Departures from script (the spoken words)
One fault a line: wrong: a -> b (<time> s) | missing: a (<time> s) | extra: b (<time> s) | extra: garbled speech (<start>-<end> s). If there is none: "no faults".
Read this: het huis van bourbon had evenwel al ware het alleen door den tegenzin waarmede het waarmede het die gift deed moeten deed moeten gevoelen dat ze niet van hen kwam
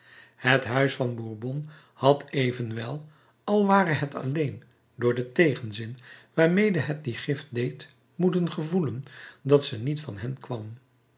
missing: waarmede het (7.0 s)
missing: deed moeten (8.5 s)